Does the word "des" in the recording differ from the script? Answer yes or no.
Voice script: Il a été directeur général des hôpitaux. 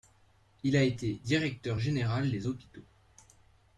no